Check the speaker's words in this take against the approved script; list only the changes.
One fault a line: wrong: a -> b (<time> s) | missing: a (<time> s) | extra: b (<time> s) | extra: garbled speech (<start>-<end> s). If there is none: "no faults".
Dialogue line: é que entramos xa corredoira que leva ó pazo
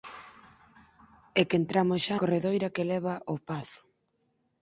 no faults